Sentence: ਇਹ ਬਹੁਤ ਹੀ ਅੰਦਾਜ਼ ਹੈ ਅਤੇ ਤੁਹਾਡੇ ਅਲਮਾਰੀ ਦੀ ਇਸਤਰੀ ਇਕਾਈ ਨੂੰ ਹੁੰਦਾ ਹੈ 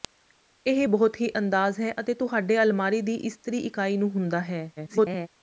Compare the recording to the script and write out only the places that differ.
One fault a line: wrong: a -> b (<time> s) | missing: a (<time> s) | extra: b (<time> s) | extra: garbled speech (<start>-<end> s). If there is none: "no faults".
extra: garbled speech (4.8-5.3 s)